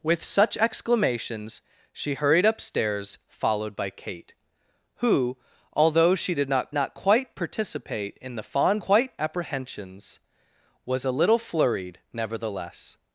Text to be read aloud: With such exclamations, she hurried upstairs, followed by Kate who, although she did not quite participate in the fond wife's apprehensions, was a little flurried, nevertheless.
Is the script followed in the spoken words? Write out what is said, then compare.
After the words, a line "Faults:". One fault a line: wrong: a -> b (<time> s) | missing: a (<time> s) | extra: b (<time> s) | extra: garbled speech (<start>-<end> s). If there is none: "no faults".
With such exclamations, she hurried upstairs, followed by Kate who, although she did not not quite participate in the fond quite apprehensions, was a little flurried, nevertheless.
Faults:
extra: not (6.7 s)
wrong: wife's -> quite (8.8 s)